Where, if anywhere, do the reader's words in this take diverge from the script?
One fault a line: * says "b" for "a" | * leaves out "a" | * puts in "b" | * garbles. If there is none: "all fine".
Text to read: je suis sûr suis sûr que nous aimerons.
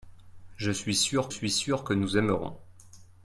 all fine